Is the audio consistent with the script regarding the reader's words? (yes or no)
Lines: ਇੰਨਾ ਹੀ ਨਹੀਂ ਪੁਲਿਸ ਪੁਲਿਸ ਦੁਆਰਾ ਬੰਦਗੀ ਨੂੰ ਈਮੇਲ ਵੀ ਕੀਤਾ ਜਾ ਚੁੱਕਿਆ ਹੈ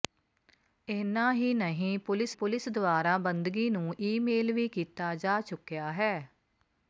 yes